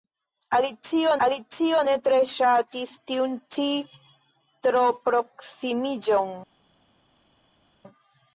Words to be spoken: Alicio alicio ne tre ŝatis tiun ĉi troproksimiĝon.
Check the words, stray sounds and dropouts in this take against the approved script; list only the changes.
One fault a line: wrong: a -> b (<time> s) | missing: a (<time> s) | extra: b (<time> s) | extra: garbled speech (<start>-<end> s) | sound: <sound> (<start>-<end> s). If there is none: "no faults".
no faults